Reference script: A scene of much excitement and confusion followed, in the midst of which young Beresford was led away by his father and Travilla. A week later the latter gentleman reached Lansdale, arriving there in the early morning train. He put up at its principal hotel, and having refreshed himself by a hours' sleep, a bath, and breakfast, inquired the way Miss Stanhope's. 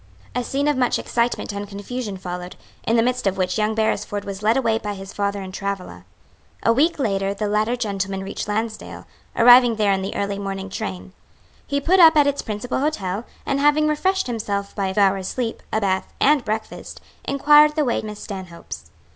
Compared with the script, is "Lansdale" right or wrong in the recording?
right